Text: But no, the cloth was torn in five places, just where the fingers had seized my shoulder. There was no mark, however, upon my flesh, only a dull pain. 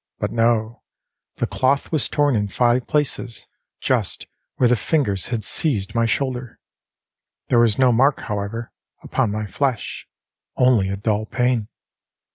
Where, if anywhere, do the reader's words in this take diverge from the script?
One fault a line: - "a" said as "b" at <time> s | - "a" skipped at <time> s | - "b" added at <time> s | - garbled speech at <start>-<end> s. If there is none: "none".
none